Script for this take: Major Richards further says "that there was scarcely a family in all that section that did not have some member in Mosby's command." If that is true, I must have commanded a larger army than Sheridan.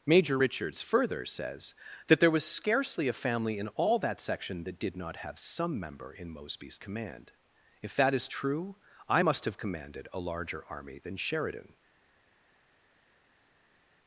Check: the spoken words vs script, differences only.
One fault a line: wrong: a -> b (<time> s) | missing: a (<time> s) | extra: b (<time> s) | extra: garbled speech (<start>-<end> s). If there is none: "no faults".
no faults